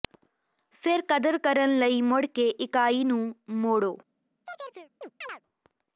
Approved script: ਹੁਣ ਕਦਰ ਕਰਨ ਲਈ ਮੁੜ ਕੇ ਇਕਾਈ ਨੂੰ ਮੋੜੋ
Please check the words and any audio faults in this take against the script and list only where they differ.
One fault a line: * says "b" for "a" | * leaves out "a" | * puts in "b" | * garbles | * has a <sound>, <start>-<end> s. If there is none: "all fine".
* says "ਫਿਰ" for "ਹੁਣ"
* has a chirp, 4.5-5.4 s